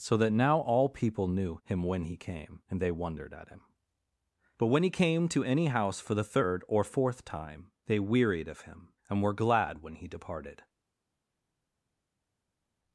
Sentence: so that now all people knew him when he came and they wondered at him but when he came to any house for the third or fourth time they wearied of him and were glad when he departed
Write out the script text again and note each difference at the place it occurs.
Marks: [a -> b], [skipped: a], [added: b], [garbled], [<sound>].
so that now all people knew him when he came and they wondered at him but when he came to any house for the third or fourth time they wearied of him and were glad when he departed